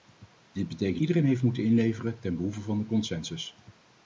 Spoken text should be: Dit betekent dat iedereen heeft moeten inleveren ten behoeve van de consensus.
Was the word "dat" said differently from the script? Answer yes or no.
yes